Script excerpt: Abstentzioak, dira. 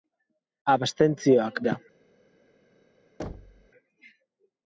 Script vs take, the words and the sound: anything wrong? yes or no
yes